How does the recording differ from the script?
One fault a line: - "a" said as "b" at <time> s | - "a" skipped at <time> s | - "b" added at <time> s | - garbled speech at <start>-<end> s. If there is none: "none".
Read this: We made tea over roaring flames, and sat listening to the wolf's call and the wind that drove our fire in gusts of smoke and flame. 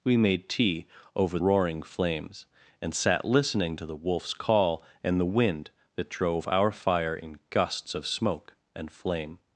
none